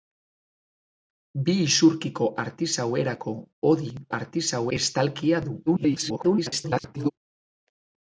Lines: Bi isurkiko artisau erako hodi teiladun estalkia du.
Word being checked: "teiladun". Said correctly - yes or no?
no